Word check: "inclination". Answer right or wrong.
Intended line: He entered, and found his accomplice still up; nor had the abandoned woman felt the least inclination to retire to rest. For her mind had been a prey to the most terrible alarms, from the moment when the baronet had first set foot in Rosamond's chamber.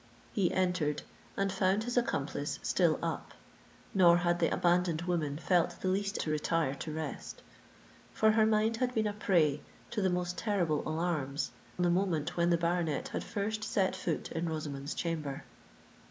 wrong